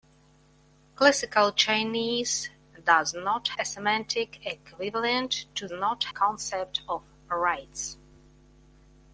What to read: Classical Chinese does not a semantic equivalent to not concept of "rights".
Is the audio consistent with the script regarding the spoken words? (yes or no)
yes